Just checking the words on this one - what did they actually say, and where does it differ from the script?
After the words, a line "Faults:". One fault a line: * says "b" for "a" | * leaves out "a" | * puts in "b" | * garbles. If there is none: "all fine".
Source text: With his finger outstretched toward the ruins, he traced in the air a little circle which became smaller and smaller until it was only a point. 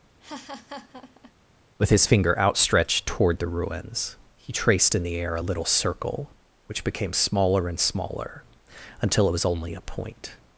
With his finger outstretched toward the ruins, he traced in the air a little circle which became smaller and smaller until it was only a point.
Faults:
all fine